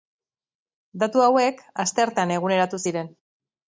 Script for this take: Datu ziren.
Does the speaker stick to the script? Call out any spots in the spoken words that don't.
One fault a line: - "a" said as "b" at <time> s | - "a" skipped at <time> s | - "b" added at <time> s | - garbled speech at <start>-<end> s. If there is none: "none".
- "hauek asteartean eguneratu" added at 1.3 s